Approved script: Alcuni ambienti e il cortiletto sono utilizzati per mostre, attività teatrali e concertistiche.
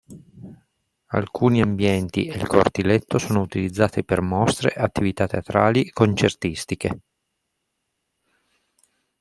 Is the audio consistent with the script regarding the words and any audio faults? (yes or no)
yes